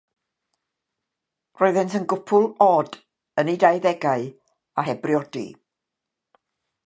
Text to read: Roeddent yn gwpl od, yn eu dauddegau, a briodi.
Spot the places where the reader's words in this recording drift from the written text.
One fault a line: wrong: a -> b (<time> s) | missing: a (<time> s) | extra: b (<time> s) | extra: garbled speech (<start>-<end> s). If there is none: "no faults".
extra: heb (4.9 s)